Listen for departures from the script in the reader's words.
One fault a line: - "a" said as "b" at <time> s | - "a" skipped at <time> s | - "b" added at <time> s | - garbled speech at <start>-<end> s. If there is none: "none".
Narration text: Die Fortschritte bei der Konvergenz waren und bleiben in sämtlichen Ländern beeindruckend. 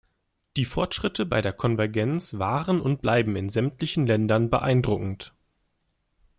none